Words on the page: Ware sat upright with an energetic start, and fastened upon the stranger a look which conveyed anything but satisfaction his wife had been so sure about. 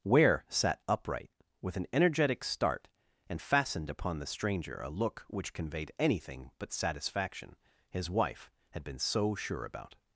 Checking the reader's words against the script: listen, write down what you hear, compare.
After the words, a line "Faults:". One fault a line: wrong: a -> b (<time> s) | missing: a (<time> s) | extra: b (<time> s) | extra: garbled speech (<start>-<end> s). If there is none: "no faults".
Ware sat upright with an energetic start, and fastened upon the stranger a look which conveyed anything but satisfaction his wife had been so sure about.
Faults:
no faults